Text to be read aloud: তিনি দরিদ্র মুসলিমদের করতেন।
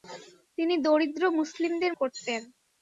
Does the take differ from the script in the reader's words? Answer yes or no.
no